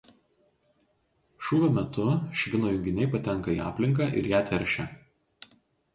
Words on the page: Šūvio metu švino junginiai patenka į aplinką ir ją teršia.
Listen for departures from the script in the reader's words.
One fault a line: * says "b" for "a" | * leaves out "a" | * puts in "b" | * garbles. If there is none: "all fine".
all fine